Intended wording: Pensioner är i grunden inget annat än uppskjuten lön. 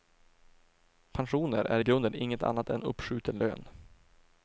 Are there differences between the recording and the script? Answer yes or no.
no